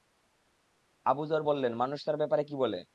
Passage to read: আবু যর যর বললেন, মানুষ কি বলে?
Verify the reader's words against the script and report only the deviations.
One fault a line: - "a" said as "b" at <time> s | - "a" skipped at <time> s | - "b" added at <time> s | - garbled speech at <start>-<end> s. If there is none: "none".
- "যর" skipped at 1.4 s
- "তার ব্যাপারে" added at 2.1 s